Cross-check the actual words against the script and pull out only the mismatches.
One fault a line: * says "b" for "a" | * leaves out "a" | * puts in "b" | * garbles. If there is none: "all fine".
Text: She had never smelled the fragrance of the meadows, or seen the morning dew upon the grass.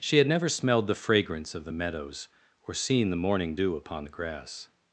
all fine